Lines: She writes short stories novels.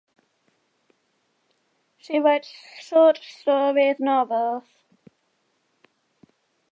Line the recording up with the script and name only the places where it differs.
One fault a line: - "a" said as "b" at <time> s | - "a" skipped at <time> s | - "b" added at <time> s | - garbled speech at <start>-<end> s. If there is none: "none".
none